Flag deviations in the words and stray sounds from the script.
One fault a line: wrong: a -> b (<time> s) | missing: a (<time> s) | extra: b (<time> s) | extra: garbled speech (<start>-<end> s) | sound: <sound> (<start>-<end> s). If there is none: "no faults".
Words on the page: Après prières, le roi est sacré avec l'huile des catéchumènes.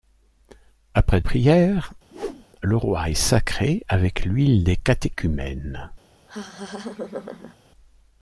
sound: whoosh (2.1-2.5 s)
sound: laugh (6.3-7.6 s)